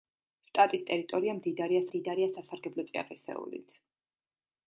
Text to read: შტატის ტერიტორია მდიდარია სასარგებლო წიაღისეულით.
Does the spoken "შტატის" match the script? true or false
true